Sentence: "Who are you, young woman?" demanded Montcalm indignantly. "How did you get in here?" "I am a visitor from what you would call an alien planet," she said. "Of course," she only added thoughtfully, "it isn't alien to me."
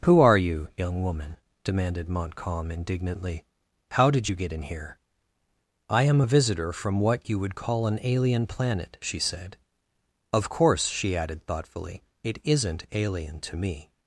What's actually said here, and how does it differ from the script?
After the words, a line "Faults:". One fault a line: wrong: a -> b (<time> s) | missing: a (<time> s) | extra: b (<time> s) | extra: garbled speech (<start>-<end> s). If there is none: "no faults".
"Who are you, young woman?" demanded Montcalm indignantly. "How did you get in here?" "I am a visitor from what you would call an alien planet," she said. "Of course," she added thoughtfully, "it isn't alien to me."
Faults:
missing: only (11.2 s)